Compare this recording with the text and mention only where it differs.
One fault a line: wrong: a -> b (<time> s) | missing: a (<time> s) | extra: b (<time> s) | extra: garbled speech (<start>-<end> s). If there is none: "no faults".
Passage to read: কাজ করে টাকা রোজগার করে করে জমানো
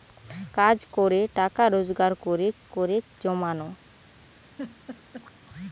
no faults